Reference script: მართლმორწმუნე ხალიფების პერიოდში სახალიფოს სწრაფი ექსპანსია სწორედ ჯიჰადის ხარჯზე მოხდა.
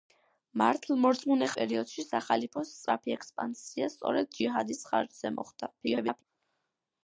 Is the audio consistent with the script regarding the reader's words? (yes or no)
no